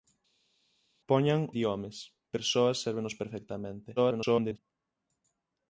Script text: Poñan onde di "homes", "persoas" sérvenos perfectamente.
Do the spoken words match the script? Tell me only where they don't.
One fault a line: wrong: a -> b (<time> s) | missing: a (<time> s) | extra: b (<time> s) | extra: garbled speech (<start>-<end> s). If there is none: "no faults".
missing: onde (1.4 s)
extra: garbled speech (4.0-4.6 s)